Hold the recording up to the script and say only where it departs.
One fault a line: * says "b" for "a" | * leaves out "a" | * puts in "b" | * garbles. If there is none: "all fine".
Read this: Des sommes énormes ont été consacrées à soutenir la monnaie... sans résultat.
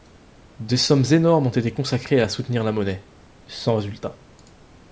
all fine